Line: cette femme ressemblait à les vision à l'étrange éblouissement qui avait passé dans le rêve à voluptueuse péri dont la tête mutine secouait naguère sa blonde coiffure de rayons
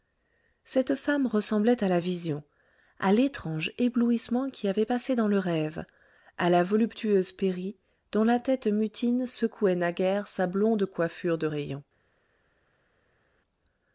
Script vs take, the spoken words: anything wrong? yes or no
yes